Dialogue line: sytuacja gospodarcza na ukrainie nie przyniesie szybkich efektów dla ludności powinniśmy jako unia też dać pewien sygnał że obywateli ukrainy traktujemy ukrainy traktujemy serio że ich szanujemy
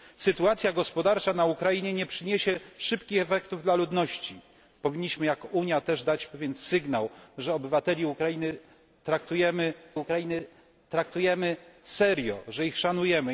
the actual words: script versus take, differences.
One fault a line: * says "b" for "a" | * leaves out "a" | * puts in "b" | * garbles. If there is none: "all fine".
all fine